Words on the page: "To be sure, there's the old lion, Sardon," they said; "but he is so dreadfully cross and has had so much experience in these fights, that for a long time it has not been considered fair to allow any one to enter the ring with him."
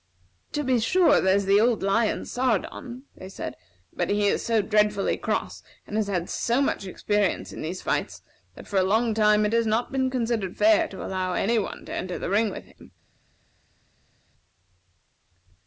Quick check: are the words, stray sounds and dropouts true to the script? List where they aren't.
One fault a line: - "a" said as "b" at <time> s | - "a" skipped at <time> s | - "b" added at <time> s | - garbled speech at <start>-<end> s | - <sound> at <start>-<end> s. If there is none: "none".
none